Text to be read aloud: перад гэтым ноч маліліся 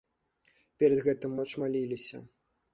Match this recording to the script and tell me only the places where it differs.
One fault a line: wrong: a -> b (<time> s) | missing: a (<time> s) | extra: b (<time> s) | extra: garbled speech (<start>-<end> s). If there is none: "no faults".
no faults